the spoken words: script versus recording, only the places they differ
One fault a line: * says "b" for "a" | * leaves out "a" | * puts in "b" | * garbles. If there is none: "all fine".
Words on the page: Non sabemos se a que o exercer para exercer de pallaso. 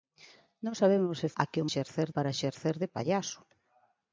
all fine